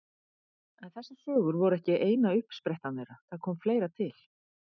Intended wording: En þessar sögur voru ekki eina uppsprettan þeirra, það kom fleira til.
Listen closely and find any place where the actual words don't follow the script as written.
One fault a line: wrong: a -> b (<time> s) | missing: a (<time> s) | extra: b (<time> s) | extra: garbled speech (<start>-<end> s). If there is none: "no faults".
no faults